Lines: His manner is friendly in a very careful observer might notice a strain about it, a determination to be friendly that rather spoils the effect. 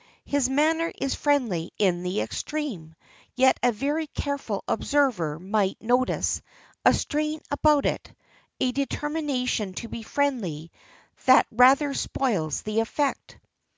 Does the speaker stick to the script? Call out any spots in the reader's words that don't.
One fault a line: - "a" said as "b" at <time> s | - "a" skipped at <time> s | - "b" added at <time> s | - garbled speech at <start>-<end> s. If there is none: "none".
- "the extreme yet" added at 2.0 s